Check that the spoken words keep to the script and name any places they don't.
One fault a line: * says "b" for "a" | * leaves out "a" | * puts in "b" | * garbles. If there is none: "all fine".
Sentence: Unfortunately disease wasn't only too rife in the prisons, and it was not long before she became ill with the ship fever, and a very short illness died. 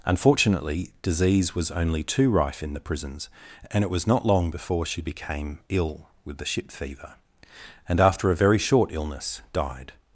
* says "was" for "wasn't"
* puts in "after"